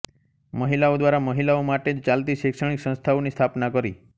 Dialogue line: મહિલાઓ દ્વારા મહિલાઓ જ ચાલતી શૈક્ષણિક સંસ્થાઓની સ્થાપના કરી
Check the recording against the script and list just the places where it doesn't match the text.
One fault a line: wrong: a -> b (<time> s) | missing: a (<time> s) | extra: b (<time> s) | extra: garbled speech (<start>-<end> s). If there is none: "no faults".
extra: માટે (1.6 s)